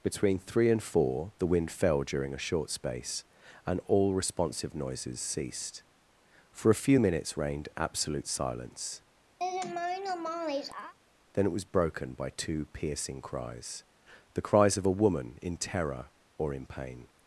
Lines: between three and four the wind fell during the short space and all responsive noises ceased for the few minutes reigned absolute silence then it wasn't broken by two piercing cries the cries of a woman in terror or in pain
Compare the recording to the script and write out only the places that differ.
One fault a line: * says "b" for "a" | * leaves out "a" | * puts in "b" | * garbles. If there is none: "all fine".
* says "a" for "the"
* says "a" for "the"
* says "was" for "wasn't"